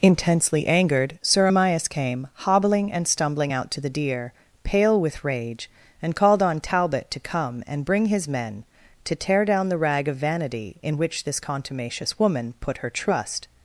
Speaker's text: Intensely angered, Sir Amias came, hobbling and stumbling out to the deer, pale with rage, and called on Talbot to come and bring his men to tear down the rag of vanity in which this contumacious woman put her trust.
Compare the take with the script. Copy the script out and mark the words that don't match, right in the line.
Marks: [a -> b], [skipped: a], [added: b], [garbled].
Intensely angered, Sir Amias came, hobbling and stumbling out to the deer, pale with rage, and called on Talbot to come and bring his men to tear down the rag of vanity in which this contumacious woman put her trust.